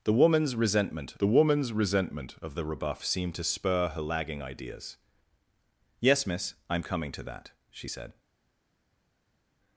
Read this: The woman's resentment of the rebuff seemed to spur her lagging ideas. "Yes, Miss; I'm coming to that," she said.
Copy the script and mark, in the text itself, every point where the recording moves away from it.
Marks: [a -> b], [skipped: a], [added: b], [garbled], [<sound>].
The woman's resentment [added: the woman's resentment] of the rebuff seemed to spur her lagging ideas. "Yes, Miss; I'm coming to that," she said.